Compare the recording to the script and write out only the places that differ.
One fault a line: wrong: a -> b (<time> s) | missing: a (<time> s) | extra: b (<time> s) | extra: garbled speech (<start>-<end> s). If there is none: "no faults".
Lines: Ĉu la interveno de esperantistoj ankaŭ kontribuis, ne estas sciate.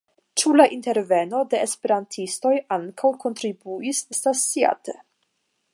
missing: ne (4.0 s)